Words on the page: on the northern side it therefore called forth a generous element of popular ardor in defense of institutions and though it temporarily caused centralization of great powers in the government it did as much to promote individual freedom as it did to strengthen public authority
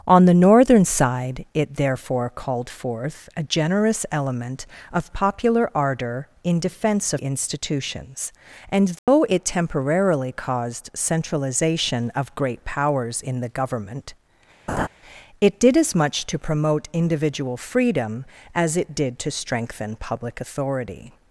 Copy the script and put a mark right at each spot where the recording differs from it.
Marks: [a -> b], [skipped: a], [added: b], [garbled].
on the northern side it therefore called forth a generous element of popular ardor in defense of institutions and though it temporarily caused centralization of great powers in the government it did as much to promote individual freedom as it did to strengthen public authority